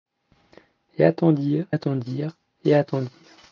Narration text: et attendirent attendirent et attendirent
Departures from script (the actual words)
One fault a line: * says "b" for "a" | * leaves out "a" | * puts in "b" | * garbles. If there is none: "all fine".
all fine